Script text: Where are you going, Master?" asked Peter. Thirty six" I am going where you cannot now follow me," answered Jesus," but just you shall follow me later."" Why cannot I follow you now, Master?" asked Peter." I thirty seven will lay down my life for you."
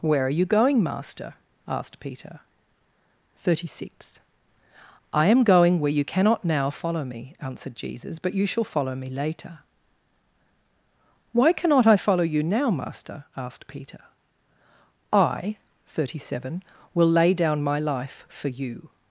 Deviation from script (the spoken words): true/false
true